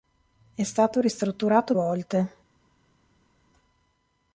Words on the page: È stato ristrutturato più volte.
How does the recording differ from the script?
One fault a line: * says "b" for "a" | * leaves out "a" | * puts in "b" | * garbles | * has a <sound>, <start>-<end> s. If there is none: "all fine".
* leaves out "più"